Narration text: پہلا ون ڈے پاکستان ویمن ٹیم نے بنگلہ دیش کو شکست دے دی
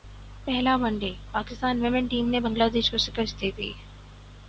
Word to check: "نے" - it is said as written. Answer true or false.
true